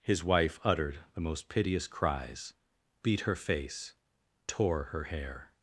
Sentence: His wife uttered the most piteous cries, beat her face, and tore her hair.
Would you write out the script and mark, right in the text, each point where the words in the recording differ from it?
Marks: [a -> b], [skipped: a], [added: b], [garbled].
His wife uttered the most piteous cries, beat her face, [skipped: and] tore her hair.